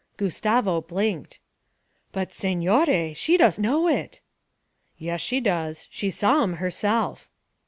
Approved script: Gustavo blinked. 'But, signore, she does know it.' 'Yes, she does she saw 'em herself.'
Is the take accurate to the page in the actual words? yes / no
yes